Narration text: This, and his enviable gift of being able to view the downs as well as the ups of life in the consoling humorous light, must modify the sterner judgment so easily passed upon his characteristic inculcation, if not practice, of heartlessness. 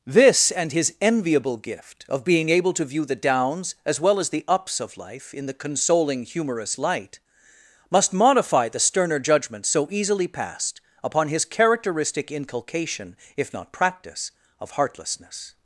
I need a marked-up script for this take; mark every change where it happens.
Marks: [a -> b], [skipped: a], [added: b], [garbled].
This, and his enviable gift of being able to view the downs as well as the ups of life in the consoling humorous light, must modify the sterner judgment so easily passed upon his characteristic inculcation, if not practice, of heartlessness.